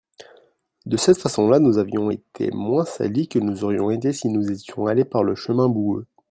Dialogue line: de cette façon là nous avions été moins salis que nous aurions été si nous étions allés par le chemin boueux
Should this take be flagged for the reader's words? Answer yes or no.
no